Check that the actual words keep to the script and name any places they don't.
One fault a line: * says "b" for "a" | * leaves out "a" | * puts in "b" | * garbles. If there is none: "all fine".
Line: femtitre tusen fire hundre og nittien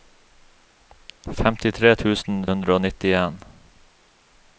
* leaves out "fire"